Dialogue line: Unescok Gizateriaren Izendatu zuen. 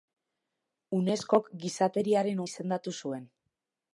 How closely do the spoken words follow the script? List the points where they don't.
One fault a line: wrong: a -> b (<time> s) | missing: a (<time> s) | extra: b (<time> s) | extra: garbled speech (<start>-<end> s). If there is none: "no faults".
no faults